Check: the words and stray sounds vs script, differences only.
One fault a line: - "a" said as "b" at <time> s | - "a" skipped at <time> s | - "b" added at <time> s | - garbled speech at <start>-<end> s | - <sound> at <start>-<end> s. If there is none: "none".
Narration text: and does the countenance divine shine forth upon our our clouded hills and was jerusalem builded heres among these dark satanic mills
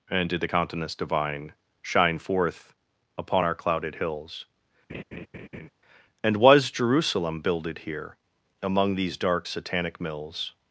- "does" said as "did" at 0.3 s
- "our" skipped at 3.5 s
- laugh at 4.9-5.7 s
- "heres" said as "here" at 7.8 s